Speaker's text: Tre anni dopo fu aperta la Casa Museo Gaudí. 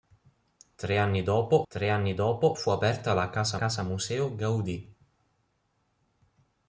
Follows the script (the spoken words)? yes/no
no